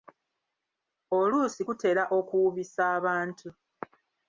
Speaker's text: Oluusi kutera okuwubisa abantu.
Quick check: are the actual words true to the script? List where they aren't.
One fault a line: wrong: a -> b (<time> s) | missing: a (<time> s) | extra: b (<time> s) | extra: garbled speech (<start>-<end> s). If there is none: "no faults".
no faults